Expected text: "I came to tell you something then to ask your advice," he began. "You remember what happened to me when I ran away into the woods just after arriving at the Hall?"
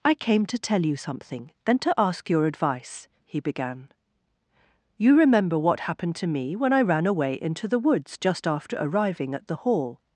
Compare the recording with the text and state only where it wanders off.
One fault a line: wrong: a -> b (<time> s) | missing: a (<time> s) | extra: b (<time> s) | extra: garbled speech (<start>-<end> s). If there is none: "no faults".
no faults